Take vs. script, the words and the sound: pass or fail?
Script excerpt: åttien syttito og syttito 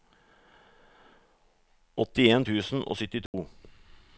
fail